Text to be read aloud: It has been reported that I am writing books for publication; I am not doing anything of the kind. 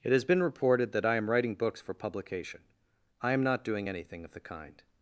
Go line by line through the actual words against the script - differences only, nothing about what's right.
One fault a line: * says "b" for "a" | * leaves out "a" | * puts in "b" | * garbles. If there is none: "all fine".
all fine